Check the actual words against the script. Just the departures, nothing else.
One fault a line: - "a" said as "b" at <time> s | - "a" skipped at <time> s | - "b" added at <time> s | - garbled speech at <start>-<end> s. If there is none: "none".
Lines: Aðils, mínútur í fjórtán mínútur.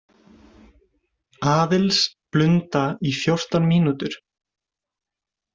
- "mínútur" said as "blunda" at 2.4 s